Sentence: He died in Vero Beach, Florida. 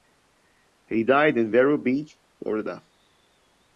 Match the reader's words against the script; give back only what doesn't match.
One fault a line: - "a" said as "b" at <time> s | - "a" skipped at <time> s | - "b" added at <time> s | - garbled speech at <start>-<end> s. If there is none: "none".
none